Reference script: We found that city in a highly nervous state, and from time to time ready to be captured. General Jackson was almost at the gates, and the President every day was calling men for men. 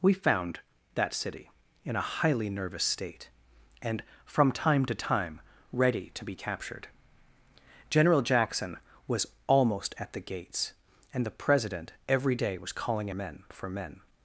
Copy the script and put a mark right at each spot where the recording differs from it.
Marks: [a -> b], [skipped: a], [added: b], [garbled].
We found that city in a highly nervous state, and from time to time ready to be captured. General Jackson was almost at the gates, and the President every day was calling men for men.